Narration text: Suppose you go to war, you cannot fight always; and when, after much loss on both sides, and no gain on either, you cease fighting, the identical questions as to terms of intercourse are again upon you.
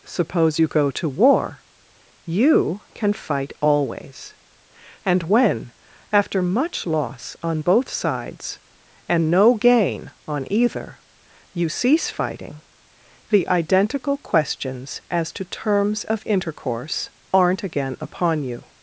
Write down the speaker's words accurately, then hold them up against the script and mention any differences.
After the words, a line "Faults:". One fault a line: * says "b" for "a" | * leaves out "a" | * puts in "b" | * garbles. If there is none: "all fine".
Suppose you go to war, you can fight always; and when, after much loss on both sides, and no gain on either, you cease fighting, the identical questions as to terms of intercourse aren't again upon you.
Faults:
* says "can" for "cannot"
* says "aren't" for "are"